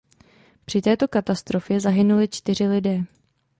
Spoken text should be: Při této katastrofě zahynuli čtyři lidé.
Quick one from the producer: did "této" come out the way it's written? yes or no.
yes